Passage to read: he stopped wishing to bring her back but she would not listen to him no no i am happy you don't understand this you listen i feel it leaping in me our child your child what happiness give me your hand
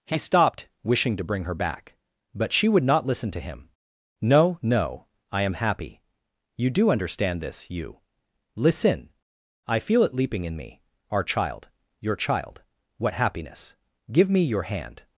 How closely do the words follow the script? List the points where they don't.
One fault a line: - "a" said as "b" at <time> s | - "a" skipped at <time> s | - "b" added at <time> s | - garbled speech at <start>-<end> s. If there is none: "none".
- "don't" said as "do" at 6.7 s